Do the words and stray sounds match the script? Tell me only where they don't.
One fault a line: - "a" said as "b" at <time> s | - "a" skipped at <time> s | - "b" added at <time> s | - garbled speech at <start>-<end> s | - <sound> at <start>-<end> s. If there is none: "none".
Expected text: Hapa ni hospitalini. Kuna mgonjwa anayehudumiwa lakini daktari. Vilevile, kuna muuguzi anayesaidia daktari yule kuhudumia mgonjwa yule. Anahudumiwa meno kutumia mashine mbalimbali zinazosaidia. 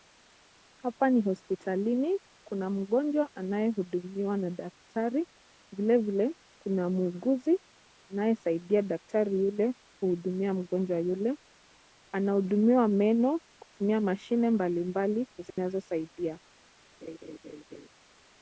- "lakini" said as "na" at 4.4 s
- dropout at 15.5-15.6 s
- laugh at 17.0-17.9 s